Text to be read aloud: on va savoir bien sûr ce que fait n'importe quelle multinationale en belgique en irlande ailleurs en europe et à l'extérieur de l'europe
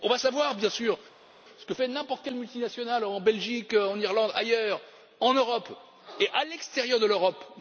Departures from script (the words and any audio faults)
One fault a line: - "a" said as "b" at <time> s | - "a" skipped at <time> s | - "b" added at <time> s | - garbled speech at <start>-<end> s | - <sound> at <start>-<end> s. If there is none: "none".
none